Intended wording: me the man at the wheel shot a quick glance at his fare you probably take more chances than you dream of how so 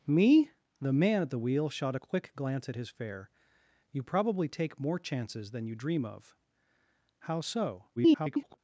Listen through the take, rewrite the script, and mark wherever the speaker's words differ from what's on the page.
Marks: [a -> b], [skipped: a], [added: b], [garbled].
me the man at the wheel shot a quick glance at his fare you probably take more chances than you dream of how so [garbled]